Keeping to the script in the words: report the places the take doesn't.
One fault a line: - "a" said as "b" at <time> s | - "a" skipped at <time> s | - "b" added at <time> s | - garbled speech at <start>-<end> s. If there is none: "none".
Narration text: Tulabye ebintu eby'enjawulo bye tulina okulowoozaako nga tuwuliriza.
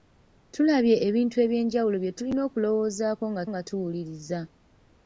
- "nga" added at 3.5 s